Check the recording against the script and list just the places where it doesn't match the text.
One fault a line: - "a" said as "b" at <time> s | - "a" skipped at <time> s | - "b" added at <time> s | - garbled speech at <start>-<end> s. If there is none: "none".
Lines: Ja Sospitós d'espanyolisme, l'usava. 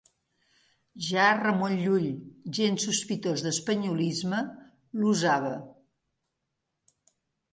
- "Ramon Llull gens" added at 1.4 s